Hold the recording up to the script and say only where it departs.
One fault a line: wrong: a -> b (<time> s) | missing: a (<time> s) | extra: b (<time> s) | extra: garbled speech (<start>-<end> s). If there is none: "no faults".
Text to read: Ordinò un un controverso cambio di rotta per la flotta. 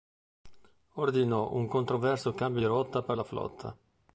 missing: un (1.7 s)